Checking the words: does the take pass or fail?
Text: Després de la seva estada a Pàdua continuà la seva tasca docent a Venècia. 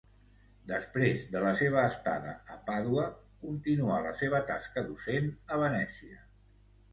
pass